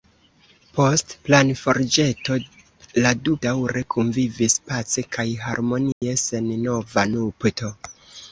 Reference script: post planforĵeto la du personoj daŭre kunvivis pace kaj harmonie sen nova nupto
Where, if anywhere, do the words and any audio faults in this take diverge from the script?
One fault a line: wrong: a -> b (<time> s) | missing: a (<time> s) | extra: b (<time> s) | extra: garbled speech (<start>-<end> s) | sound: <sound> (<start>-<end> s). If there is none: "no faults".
missing: personoj (3.4 s)
sound: dropout (5.9-6.0 s)